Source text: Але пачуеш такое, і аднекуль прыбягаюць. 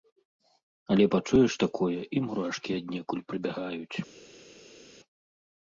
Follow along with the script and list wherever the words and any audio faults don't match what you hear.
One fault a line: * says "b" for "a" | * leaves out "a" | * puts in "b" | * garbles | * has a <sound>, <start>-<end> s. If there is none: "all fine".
* puts in "мурашкі"